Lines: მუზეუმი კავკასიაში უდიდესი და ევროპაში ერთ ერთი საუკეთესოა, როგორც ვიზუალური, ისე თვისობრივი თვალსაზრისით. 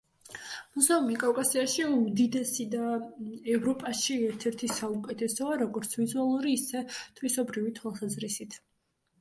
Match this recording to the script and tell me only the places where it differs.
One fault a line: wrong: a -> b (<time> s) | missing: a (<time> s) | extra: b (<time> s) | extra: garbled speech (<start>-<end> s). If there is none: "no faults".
no faults